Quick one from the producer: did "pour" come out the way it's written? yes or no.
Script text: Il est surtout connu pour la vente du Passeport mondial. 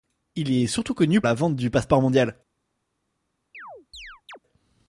no